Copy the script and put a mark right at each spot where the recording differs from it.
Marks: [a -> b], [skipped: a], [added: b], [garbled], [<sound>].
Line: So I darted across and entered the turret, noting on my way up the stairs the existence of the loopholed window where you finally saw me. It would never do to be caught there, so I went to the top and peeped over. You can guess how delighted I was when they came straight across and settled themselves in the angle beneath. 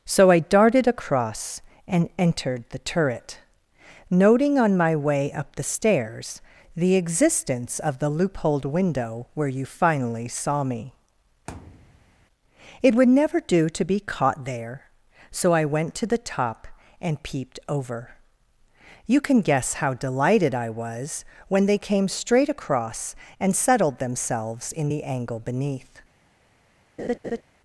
So I darted across and entered the turret, noting on my way up the stairs the existence of the loopholed window where you finally saw me. [thud] It would never do to be caught there, so I went to the top and peeped over. You can guess how delighted I was when they came straight across and settled themselves in the angle beneath. [laugh]